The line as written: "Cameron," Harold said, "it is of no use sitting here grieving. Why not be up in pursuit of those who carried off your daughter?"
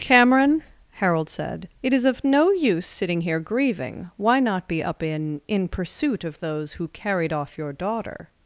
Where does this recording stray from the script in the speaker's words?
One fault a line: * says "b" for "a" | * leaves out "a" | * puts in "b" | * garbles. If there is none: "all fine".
* puts in "in"